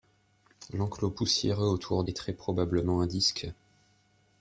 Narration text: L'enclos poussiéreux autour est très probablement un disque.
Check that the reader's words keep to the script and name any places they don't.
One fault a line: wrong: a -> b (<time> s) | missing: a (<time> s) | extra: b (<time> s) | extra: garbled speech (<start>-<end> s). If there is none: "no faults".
no faults